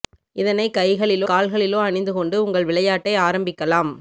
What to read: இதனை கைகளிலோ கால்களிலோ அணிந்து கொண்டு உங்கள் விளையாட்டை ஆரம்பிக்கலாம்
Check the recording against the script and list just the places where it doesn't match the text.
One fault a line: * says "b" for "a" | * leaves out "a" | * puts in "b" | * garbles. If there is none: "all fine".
all fine